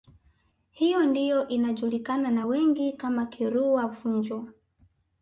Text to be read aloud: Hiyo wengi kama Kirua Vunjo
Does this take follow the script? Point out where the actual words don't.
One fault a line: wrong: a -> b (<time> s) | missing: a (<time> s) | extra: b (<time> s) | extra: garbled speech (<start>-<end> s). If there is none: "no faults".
extra: ndiyo inajulikana na (1.1 s)